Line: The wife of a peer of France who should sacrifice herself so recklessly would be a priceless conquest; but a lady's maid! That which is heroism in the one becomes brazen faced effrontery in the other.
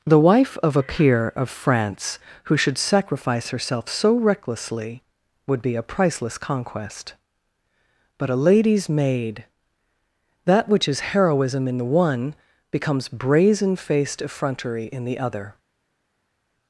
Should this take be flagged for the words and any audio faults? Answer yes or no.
no